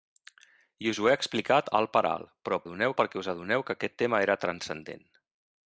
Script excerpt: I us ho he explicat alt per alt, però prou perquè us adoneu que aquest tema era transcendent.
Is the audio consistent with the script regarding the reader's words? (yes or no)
no